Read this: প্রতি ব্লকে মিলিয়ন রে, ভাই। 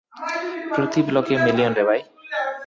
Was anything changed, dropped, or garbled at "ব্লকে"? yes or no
no